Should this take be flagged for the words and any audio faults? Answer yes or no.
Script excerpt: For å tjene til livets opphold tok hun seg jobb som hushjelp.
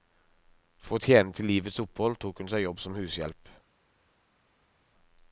no